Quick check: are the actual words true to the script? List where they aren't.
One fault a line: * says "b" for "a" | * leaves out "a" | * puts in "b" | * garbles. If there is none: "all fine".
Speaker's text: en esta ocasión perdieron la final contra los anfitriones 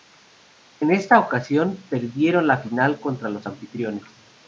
all fine